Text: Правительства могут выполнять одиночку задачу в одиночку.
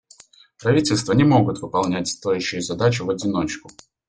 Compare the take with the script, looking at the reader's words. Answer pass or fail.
fail